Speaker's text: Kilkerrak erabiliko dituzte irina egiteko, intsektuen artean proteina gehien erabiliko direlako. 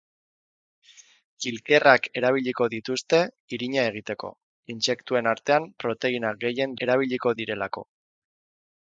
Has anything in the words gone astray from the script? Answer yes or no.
no